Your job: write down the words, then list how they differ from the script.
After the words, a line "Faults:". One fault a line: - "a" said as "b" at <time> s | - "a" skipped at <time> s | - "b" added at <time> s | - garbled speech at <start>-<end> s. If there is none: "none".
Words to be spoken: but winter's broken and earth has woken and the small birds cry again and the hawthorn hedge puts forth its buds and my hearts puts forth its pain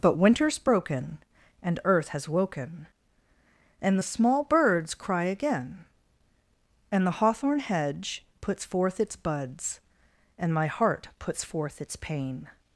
but winter's broken and earth has woken and the small birds cry again and the hawthorn hedge puts forth its buds and my heart puts forth its pain
Faults:
- "hearts" said as "heart" at 10.7 s